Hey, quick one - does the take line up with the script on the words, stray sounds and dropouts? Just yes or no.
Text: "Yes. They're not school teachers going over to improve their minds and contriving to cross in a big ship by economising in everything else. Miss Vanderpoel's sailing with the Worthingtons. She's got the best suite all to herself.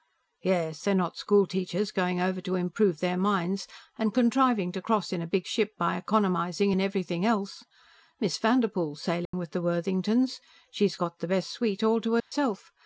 no